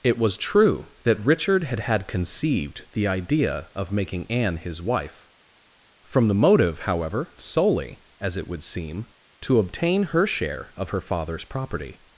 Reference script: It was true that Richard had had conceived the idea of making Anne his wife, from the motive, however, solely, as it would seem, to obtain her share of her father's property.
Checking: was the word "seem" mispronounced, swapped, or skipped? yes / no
no